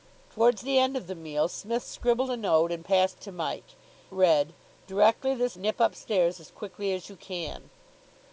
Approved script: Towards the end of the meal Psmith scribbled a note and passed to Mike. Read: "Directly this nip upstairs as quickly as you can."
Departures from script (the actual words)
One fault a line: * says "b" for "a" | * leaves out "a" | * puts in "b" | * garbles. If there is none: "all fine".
all fine